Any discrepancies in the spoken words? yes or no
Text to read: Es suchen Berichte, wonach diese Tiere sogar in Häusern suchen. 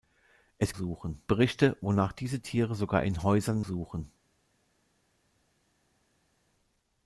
no